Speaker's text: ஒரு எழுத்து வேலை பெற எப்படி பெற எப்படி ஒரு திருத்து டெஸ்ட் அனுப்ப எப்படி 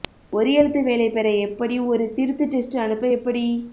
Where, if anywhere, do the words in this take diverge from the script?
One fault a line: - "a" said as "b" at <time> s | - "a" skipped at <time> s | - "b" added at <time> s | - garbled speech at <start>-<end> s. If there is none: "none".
- "பெற எப்படி" skipped at 1.8 s